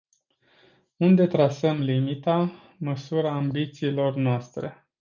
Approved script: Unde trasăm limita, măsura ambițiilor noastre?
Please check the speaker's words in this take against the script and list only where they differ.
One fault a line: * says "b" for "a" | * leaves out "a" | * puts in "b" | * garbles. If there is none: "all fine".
all fine